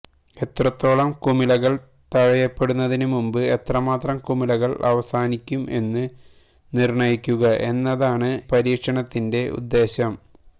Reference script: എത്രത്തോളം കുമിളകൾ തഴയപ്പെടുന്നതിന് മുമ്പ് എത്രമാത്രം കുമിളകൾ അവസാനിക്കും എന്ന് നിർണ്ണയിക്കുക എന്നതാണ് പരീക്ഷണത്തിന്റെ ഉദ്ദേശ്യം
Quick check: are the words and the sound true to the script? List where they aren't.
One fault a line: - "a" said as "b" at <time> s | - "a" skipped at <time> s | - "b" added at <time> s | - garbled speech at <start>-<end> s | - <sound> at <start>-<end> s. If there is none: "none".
none